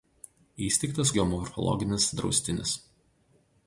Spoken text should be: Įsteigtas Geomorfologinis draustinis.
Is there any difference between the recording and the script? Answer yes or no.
no